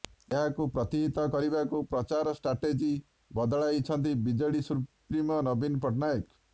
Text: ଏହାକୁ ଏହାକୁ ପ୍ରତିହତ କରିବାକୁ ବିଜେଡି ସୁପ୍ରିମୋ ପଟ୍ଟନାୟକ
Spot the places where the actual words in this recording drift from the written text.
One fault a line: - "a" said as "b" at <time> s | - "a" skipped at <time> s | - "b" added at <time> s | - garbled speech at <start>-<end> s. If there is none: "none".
- "ଏହାକୁ" skipped at 0.7 s
- "ପ୍ରଚାର ଷ୍ଟ୍ରାଟେଜି ବଦଳାଇଛନ୍ତି" added at 1.9 s
- "ନବୀନ" added at 5.5 s